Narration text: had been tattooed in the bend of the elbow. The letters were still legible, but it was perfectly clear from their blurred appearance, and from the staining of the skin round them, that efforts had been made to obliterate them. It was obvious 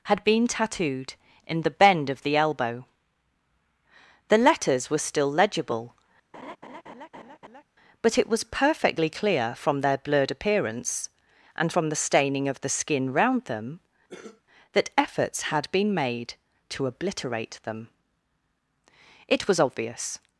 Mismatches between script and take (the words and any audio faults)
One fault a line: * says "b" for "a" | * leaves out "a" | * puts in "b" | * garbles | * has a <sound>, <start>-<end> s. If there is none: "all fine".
* has a laugh, 6.3-7.6 s
* has a cough, 14.1-14.4 s